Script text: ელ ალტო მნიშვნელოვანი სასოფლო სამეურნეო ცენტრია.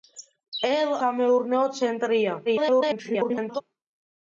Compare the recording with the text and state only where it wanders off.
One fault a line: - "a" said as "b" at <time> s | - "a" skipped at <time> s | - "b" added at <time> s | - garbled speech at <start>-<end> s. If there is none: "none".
- "ალტო მნიშვნელოვანი სასოფლო" skipped at 0.9 s
- garbled speech at 2.5-3.6 s